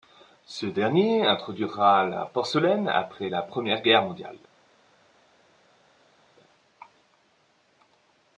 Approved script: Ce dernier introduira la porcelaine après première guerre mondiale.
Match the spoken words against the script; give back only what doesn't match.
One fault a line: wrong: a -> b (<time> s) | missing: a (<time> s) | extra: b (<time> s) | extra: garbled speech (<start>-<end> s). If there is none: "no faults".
extra: la (3.3 s)